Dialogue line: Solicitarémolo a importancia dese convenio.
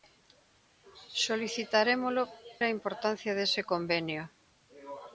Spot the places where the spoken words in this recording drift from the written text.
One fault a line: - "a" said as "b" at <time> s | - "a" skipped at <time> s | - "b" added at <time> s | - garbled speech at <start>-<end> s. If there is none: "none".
none